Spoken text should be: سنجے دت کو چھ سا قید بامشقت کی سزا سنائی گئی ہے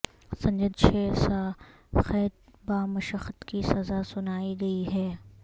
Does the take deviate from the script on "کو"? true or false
true